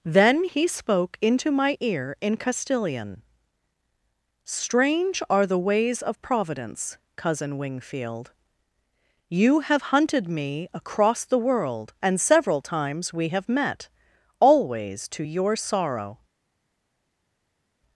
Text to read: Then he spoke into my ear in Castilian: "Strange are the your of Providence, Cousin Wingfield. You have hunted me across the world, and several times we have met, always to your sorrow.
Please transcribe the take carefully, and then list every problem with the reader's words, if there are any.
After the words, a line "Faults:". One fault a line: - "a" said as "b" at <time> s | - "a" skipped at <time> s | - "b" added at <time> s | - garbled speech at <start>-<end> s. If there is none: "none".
Then he spoke into my ear in Castilian: "Strange are the ways of Providence, Cousin Wingfield. You have hunted me across the world, and several times we have met, always to your sorrow.
Faults:
- "your" said as "ways" at 5.6 s